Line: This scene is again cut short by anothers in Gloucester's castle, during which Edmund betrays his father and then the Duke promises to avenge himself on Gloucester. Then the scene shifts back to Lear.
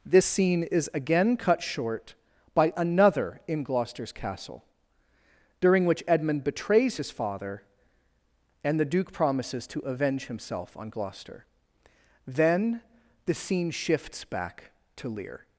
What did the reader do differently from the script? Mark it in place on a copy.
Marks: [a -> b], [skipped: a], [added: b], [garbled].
This scene is again cut short by [anothers -> another] in Gloucester's castle, during which Edmund betrays his father and [skipped: then] the Duke promises to avenge himself on Gloucester. Then the scene shifts back to Lear.